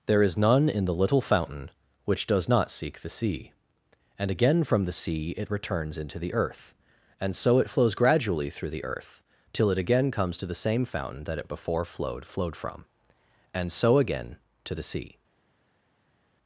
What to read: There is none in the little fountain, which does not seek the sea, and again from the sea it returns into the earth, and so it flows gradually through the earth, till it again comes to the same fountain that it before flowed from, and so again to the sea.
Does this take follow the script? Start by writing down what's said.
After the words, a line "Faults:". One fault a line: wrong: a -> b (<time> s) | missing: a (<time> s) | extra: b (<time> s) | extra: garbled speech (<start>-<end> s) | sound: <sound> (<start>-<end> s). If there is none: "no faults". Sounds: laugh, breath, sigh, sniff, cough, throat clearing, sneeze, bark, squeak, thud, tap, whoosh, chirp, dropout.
There is none in the little fountain, which does not seek the sea, and again from the sea it returns into the earth, and so it flows gradually through the earth, till it again comes to the same fountain that it before flowed flowed from, and so again to the sea.
Faults:
extra: flowed (12.2 s)